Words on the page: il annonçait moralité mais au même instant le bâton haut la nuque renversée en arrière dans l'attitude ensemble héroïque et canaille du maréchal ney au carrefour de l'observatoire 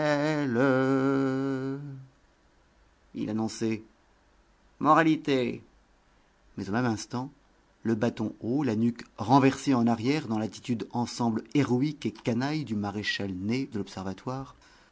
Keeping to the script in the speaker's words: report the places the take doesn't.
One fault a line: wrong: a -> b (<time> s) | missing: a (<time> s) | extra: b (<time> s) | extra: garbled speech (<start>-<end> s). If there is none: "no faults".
missing: au carrefour (13.7 s)